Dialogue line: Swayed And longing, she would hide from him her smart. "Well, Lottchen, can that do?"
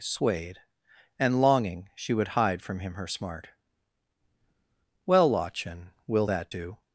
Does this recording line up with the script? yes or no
no